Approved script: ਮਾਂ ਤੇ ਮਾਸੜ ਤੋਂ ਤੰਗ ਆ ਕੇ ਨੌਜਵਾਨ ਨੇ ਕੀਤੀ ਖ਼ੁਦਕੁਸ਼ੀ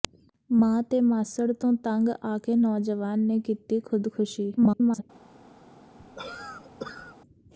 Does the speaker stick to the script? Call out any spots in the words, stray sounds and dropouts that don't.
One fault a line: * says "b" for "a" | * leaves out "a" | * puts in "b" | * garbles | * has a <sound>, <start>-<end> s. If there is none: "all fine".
* garbles
* has a cough, 6.0-7.2 s